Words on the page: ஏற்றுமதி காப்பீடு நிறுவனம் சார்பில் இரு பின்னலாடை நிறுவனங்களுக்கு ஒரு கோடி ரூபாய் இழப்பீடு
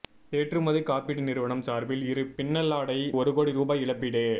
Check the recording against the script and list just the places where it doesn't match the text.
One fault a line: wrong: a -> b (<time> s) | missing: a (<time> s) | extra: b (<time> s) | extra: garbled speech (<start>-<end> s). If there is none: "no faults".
missing: நிறுவனங்களுக்கு (3.0 s)